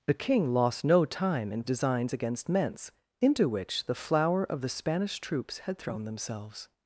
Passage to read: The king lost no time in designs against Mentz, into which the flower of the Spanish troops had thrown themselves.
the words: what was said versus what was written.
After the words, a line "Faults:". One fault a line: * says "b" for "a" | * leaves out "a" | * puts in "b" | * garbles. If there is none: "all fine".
The king lost no time in designs against Mentz, into which the flower of the Spanish troops had thrown themselves.
Faults:
all fine